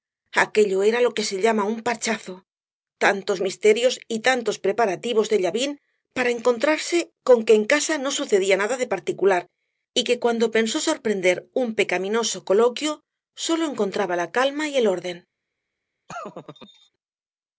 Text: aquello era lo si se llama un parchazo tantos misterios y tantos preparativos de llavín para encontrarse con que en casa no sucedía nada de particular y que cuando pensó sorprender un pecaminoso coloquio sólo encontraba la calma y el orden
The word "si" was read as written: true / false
false